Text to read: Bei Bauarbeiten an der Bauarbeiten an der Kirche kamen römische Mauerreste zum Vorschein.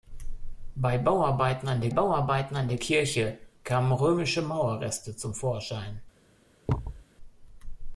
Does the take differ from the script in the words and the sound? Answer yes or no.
yes